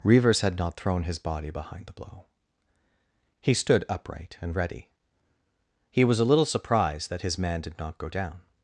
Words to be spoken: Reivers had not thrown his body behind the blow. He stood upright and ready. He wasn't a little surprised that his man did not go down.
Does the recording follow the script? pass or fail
fail